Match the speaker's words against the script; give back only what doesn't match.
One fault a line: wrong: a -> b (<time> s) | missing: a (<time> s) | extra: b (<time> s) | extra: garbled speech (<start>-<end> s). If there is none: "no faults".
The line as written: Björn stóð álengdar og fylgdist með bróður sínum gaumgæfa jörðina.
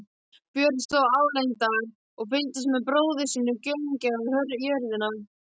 no faults